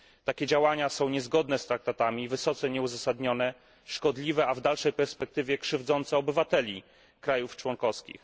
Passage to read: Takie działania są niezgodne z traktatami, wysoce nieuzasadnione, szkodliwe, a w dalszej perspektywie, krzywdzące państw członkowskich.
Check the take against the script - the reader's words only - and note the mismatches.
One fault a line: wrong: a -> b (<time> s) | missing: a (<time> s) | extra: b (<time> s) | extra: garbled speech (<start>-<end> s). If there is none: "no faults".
extra: obywateli (6.2 s)